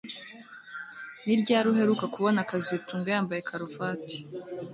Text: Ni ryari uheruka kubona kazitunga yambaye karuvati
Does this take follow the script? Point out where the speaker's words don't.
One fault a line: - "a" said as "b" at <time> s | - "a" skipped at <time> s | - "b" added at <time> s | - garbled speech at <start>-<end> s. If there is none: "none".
none